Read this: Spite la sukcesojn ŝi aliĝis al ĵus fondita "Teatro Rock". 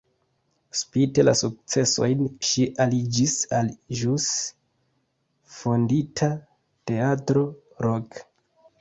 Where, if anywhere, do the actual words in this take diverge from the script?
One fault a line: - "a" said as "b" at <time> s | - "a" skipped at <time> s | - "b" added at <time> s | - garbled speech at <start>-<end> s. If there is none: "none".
none